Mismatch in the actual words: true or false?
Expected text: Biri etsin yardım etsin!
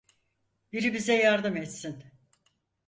true